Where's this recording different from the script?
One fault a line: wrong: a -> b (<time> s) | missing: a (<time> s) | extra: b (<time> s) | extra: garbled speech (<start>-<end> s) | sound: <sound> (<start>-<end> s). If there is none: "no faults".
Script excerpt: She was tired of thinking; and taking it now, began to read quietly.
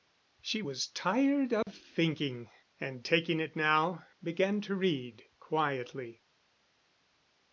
sound: dropout (1.6-1.7 s)